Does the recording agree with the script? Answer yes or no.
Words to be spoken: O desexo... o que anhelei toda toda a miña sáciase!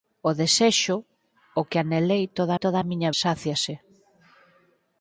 yes